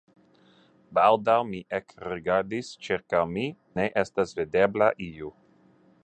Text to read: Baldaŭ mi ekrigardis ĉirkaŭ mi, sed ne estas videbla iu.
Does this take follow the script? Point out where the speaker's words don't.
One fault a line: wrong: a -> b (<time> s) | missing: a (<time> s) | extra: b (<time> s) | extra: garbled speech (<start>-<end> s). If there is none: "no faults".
missing: sed (3.5 s)